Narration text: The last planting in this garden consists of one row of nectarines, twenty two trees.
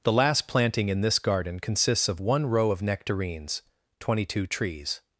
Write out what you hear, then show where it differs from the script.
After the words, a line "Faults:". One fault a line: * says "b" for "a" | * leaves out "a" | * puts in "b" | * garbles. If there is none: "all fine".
The last planting in this garden consists of one row of nectarines, twenty two trees.
Faults:
all fine